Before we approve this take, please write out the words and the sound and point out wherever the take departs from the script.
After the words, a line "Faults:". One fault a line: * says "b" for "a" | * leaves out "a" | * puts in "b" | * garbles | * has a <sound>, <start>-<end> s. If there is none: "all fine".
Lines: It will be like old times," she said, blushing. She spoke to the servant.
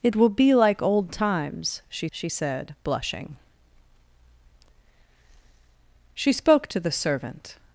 It will be like old times," she she said, blushing. She spoke to the servant.
Faults:
* puts in "she"